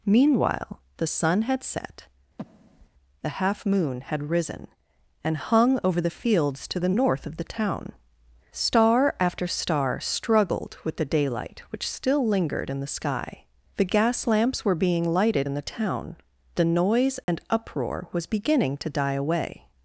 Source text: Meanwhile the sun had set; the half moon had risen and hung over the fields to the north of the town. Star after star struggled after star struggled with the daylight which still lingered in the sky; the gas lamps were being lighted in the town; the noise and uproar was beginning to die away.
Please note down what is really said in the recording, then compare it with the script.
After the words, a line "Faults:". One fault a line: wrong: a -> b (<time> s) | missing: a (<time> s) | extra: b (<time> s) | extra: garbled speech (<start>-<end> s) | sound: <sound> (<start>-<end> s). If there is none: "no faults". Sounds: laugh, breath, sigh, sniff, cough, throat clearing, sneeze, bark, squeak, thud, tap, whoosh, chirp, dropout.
Meanwhile the sun had set; the half moon had risen and hung over the fields to the north of the town. Star after star struggled with the daylight which still lingered in the sky; the gas lamps were being lighted in the town; the noise and uproar was beginning to die away.
Faults:
sound: breath (2.4-2.9 s)
missing: after star struggled (10.8 s)
sound: dropout (17.2-17.3 s)